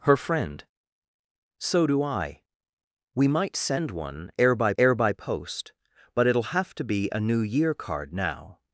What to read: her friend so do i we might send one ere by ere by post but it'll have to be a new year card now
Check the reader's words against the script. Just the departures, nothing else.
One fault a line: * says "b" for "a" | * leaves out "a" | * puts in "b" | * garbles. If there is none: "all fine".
all fine